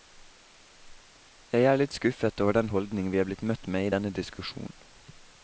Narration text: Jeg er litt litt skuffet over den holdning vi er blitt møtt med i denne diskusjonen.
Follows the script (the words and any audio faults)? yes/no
no